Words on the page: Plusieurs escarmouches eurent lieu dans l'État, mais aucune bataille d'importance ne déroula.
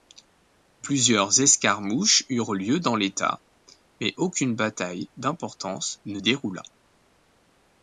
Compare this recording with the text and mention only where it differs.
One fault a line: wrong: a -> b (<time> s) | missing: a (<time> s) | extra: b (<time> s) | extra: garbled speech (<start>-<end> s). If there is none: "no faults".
no faults